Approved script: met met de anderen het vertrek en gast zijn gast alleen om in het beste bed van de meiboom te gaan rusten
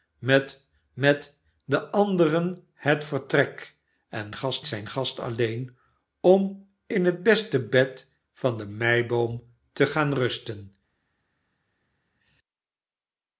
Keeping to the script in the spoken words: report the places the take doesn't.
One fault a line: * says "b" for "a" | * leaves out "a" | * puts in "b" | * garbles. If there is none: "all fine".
all fine